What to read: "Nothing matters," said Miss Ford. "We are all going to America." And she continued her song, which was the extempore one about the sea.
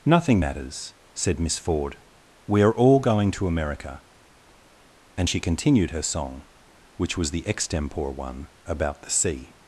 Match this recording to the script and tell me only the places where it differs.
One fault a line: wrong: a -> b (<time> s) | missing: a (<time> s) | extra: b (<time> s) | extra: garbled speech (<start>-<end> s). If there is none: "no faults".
no faults